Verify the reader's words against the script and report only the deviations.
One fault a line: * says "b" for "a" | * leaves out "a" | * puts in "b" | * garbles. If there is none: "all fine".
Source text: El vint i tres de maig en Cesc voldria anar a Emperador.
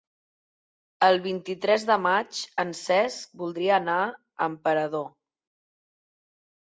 all fine